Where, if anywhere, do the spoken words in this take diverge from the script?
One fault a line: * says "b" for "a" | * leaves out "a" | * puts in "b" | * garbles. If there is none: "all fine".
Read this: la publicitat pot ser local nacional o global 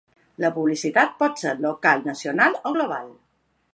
all fine